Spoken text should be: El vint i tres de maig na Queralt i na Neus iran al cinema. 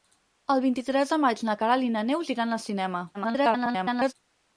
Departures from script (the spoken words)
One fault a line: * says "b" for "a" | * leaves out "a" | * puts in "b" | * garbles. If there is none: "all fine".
* garbles